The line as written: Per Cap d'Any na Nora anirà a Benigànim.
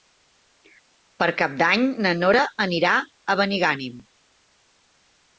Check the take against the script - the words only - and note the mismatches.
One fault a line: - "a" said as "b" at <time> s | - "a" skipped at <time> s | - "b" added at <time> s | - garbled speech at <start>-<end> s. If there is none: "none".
none